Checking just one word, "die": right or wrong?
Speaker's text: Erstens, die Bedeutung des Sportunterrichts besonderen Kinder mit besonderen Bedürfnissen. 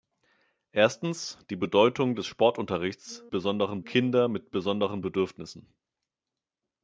right